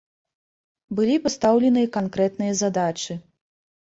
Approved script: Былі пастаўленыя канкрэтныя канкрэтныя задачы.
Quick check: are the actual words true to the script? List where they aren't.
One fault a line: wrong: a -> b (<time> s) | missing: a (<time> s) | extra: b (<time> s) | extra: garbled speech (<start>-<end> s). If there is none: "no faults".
missing: канкрэтныя (2.5 s)